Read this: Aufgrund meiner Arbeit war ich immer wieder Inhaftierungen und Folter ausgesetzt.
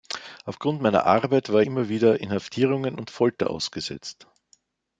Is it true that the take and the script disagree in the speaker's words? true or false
true